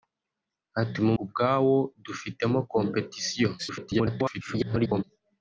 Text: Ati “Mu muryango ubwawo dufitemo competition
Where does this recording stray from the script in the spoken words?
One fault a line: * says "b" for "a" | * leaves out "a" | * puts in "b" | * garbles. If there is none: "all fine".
* leaves out "muryango"
* garbles